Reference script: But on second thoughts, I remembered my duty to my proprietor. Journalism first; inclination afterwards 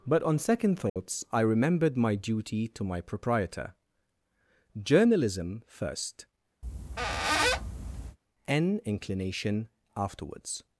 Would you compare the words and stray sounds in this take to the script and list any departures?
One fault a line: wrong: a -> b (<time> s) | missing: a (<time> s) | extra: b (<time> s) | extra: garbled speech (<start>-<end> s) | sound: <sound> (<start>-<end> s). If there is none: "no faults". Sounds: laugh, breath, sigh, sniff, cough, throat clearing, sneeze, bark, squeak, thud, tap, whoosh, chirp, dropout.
sound: dropout (0.9-1.0 s)
sound: squeak (6.6-8.2 s)
extra: n (8.5 s)